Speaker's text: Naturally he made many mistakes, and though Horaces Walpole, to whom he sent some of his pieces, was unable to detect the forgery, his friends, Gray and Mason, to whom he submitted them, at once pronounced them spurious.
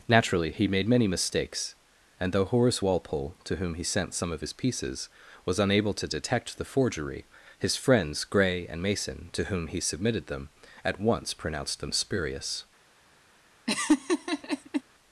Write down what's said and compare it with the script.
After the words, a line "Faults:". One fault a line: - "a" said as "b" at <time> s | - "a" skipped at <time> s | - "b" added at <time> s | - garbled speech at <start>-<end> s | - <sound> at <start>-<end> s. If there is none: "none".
Naturally he made many mistakes, and though Horace Walpole, to whom he sent some of his pieces, was unable to detect the forgery, his friends, Gray and Mason, to whom he submitted them, at once pronounced them spurious.
Faults:
- "Horaces" said as "Horace" at 2.5 s
- laugh at 13.7-14.8 s